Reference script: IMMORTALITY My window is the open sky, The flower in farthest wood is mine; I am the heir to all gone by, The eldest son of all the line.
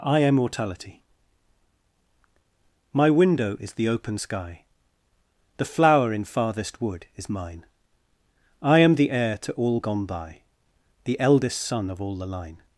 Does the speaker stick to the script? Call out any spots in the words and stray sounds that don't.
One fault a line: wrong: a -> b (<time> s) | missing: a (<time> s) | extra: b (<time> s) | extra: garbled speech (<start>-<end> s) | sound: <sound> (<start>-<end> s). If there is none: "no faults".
wrong: IMMORTALITY -> I am mortality (0.0 s)